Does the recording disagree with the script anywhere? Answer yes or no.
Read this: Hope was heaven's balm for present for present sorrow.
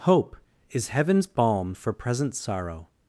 yes